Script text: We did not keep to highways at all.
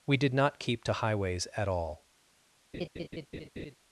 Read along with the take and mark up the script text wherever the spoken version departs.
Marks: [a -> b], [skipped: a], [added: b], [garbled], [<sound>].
We did not keep to highways at all. [laugh]